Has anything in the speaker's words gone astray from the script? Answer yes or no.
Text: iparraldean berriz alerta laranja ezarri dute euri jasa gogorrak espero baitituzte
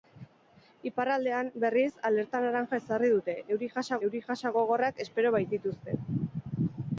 yes